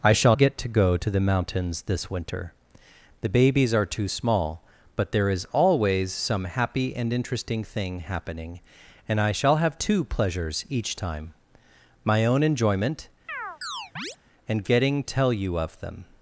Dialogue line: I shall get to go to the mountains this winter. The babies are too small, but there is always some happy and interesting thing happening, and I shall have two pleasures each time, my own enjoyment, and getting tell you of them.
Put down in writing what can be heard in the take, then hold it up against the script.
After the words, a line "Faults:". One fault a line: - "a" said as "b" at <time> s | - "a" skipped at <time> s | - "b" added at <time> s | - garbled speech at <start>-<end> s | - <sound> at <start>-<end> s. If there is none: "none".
I shall get to go to the mountains this winter. The babies are too small, but there is always some happy and interesting thing happening, and I shall have two pleasures each time, my own enjoyment, and getting tell you of them.
Faults:
- chirp at 13.3-14.2 s